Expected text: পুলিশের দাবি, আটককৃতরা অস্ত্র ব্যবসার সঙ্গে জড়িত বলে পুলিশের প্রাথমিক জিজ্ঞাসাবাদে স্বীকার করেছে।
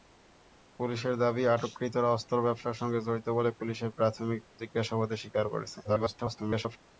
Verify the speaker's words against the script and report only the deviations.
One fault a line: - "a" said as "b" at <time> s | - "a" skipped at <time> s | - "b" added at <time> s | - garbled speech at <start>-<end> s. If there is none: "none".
- garbled speech at 5.8-6.8 s